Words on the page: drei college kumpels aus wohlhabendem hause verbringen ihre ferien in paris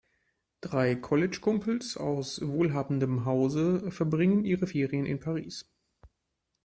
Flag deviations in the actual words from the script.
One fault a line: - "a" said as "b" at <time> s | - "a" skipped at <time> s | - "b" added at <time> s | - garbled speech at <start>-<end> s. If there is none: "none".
none